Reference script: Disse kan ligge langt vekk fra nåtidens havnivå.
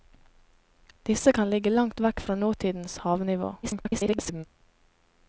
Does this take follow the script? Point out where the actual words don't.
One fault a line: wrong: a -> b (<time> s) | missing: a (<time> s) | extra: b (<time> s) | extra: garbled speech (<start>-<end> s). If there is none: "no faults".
extra: garbled speech (3.6-4.5 s)